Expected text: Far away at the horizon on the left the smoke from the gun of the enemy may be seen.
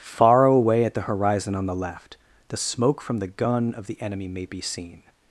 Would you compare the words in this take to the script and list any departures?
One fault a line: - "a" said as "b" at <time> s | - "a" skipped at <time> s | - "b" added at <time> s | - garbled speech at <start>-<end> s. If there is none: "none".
none